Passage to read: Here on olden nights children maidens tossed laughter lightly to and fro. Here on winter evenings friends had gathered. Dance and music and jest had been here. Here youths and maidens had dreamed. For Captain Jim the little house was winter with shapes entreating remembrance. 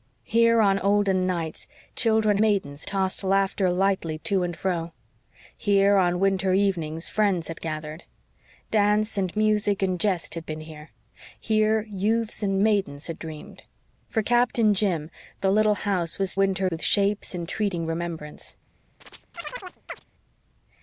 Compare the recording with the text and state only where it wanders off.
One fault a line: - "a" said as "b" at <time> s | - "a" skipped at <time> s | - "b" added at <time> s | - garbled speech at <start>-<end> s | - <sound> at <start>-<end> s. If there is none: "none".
- chirp at 19.0-20.0 s